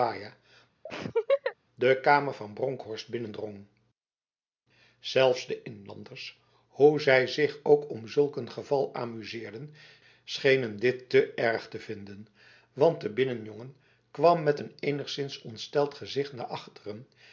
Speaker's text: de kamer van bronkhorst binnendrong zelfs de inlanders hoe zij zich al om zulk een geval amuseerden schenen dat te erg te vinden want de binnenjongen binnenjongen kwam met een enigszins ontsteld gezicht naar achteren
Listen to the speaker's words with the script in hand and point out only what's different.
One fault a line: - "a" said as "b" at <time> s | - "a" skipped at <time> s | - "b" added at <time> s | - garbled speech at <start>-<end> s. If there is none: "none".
- "al" said as "ook" at 7.6 s
- "dat" said as "dit" at 10.8 s
- "binnenjongen" skipped at 13.7 s